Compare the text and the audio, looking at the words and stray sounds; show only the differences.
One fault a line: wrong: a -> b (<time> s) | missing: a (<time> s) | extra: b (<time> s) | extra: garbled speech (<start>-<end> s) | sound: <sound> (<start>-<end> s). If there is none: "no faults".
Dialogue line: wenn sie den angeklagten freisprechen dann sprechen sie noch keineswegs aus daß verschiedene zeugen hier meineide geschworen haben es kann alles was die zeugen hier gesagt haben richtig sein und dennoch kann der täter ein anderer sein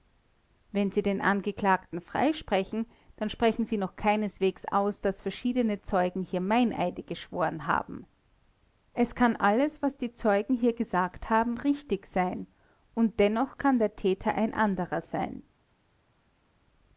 no faults